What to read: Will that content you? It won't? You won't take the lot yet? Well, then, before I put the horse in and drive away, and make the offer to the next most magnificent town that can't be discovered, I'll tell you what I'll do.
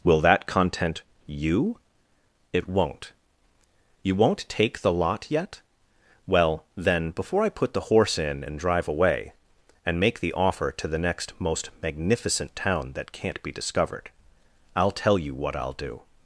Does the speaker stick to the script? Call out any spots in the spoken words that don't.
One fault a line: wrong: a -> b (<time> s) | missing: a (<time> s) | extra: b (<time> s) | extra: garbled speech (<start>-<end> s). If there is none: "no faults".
no faults